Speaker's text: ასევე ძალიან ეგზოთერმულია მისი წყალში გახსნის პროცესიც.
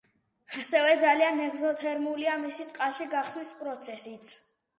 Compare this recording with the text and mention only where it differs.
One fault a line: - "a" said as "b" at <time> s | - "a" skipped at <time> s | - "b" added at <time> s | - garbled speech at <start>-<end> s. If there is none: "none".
none